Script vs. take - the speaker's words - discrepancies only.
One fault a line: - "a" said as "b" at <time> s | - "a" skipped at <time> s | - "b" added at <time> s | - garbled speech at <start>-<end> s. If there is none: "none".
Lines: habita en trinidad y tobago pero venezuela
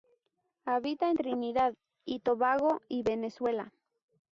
- "pero" said as "y" at 2.9 s